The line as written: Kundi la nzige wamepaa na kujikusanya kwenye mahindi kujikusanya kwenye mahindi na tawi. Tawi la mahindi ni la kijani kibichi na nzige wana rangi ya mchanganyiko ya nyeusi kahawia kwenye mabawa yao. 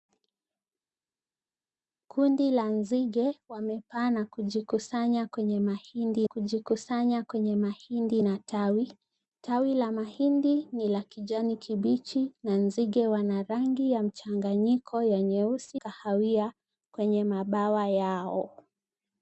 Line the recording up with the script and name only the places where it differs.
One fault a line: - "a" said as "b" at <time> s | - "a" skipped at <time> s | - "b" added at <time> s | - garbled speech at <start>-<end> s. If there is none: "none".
none